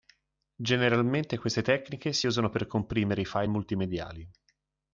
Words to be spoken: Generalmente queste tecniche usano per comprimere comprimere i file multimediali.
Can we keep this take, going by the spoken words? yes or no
no